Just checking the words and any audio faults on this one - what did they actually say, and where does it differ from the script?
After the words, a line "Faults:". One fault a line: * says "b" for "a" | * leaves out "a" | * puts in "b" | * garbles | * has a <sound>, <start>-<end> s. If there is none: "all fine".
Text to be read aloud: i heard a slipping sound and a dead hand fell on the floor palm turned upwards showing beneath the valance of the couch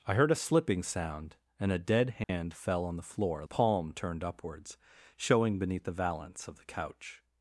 i heard a slipping sound and a dead hand fell on the floor palm turned upwards showing beneath the valance of the couch
Faults:
* has a dropout, 2.2-2.3 s